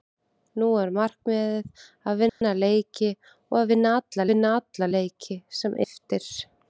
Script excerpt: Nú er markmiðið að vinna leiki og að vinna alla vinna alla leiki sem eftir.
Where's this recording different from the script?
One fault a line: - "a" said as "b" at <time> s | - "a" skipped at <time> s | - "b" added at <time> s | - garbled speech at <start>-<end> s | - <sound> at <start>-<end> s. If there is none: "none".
- dropout at 2.3-2.4 s